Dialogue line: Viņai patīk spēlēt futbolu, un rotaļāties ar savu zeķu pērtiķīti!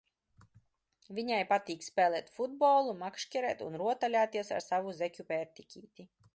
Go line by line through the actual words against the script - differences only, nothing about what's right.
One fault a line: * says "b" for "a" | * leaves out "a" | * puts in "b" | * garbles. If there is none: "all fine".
* puts in "makšķerēt"